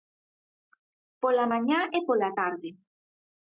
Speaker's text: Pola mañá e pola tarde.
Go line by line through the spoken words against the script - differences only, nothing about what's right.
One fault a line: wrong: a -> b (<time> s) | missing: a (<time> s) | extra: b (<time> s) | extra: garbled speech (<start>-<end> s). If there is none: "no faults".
no faults